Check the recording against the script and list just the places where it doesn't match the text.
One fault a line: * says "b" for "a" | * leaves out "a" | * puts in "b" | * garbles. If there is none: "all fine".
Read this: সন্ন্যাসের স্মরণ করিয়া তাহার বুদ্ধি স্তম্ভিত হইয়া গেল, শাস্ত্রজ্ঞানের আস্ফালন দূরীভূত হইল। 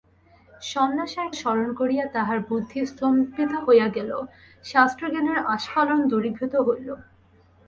all fine